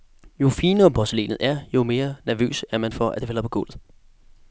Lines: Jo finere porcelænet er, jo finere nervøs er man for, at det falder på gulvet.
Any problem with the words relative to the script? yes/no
yes